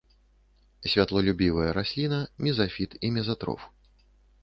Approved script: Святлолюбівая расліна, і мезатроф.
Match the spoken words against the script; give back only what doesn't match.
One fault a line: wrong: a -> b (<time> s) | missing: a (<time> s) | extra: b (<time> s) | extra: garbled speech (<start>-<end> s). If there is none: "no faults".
extra: мезафіт (2.4 s)